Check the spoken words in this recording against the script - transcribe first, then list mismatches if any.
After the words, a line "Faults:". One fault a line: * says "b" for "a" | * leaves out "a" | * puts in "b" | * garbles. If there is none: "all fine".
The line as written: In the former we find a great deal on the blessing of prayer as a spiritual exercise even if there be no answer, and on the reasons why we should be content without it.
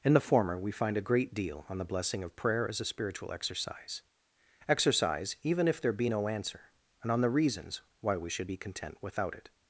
In the former we find a great deal on the blessing of prayer as a spiritual exercise exercise even if there be no answer, and on the reasons why we should be content without it.
Faults:
* puts in "exercise"